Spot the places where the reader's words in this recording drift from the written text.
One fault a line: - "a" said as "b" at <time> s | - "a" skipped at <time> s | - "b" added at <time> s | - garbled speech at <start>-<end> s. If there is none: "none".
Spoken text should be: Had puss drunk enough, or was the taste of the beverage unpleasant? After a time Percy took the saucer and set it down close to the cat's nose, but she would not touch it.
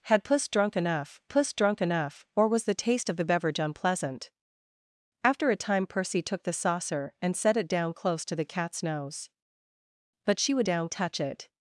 - "puss drunk enough" added at 1.3 s
- "not" said as "down" at 10.6 s